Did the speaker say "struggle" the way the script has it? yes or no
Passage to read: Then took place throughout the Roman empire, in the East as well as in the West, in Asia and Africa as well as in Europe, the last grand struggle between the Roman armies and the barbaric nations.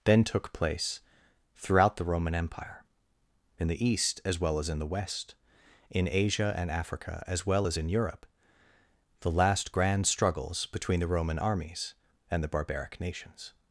no